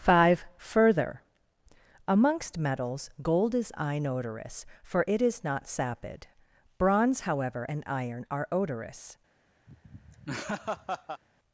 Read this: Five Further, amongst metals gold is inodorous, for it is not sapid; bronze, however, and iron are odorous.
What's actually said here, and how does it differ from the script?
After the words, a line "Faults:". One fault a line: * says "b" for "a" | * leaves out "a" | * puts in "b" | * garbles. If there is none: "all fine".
Five Further, amongst metals gold is inodorous, for it is not sapid; bronze, however, and iron are odorous.
Faults:
all fine